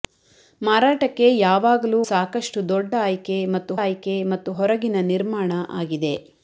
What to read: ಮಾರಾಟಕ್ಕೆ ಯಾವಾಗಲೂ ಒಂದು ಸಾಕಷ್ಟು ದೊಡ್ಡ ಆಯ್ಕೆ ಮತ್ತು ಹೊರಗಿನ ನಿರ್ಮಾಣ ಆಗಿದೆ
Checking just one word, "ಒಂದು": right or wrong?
wrong